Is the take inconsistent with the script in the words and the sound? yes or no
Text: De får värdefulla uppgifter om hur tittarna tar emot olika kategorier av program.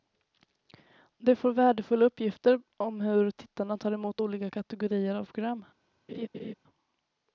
yes